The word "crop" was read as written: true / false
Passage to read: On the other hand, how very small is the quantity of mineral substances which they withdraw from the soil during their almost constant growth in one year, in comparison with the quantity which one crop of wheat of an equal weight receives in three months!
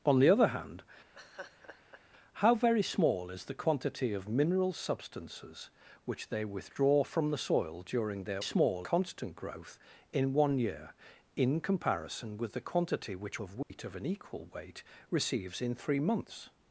false